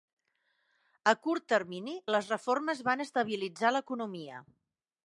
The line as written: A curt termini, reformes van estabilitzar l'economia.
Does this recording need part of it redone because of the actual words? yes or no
yes